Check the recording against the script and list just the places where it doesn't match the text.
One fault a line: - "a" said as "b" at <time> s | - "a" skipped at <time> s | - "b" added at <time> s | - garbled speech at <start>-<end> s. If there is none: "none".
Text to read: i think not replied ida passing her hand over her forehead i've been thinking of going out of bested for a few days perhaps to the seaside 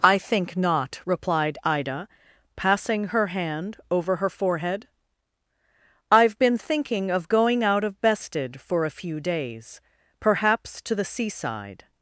none